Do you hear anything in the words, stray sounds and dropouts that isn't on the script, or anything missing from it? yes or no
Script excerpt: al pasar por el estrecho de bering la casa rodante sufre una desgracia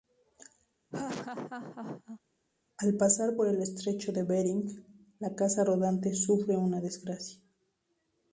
yes